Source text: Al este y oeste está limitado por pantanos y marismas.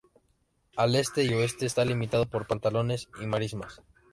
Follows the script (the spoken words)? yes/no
yes